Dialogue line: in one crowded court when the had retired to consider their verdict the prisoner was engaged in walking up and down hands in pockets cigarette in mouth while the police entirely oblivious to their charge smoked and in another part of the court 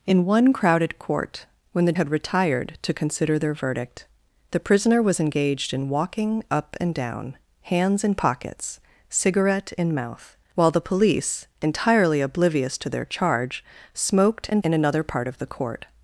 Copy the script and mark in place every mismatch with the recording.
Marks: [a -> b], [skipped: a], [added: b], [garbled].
in one crowded court when the had retired to consider their verdict the prisoner was engaged in walking up and down hands in pockets cigarette in mouth while the police entirely oblivious to their charge smoked and in another part of the court